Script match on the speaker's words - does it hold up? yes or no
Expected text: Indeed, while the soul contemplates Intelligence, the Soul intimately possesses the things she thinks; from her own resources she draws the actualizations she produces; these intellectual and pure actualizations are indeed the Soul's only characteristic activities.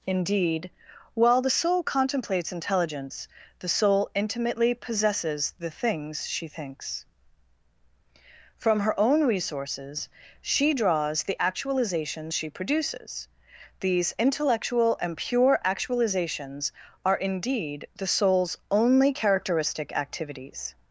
yes